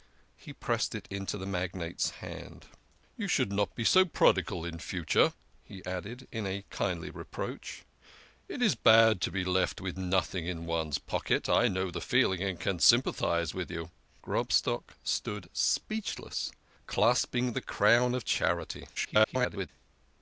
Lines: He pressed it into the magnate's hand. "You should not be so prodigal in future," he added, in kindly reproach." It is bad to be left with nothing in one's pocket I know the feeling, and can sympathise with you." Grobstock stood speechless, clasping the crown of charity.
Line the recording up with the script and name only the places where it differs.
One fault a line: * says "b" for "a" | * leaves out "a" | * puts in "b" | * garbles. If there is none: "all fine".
* garbles